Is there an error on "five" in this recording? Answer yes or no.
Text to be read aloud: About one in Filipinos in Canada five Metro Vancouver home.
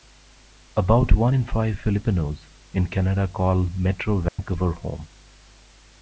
yes